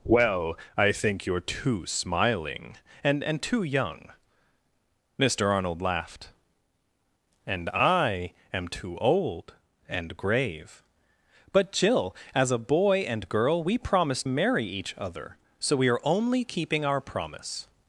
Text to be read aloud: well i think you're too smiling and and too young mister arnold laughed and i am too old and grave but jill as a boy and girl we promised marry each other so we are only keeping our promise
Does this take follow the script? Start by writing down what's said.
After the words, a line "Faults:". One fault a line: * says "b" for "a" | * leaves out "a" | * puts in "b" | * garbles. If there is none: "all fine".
well i think you're too smiling and and too young mister arnold laughed and i am too old and grave but jill as a boy and girl we promised marry each other so we are only keeping our promise
Faults:
all fine